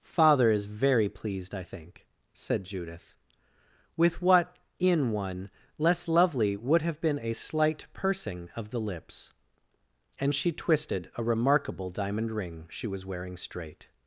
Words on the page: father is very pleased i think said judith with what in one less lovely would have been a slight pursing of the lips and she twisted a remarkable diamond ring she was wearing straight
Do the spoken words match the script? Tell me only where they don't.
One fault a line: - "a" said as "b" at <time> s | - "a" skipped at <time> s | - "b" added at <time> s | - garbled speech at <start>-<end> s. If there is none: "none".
none